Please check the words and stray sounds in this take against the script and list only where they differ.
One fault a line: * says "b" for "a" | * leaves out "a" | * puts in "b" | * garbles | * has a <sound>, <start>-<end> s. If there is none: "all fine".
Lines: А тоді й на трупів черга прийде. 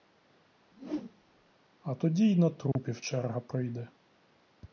* has a whoosh, 0.7-1.5 s
* has a dropout, 2.7-2.8 s